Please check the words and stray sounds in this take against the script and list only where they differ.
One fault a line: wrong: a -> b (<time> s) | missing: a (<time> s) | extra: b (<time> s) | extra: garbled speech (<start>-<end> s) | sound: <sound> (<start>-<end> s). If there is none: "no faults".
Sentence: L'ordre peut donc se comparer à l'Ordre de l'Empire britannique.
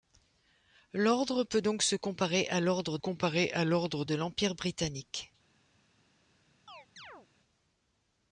extra: comparer à l'Ordre (3.0 s)
sound: chirp (6.7-7.3 s)